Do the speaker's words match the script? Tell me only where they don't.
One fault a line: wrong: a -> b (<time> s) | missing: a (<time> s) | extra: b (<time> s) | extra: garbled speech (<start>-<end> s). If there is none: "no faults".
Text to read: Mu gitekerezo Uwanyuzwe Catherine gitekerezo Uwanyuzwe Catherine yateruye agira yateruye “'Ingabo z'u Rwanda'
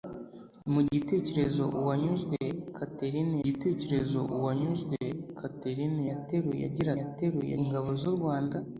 no faults